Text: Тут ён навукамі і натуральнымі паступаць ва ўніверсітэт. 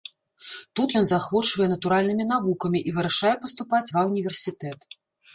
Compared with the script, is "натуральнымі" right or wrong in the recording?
wrong